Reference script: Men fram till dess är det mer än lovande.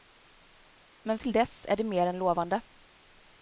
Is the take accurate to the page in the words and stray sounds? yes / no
no